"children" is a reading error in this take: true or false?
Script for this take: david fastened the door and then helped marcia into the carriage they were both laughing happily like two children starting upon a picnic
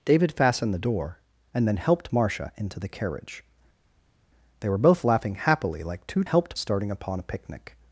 true